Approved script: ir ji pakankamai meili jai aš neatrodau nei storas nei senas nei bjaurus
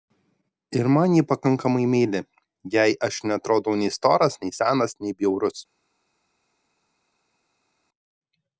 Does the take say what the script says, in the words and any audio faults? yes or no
no